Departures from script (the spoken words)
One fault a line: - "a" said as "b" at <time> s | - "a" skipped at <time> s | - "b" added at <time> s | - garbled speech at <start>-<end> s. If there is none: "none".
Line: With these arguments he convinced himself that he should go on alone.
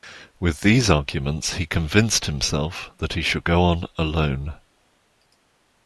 none